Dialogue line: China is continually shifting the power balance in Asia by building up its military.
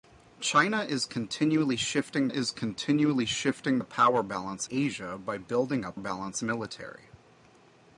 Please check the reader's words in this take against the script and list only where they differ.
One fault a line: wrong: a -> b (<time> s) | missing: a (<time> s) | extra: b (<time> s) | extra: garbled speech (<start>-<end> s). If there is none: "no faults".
extra: is continually shifting (2.3 s)
missing: in (4.7 s)
wrong: its -> balance (6.0 s)